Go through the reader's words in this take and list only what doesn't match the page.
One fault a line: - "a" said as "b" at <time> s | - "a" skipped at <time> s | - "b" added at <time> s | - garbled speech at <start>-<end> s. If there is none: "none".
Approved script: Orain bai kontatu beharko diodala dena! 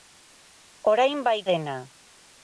- "kontatu beharko diodala" skipped at 1.4 s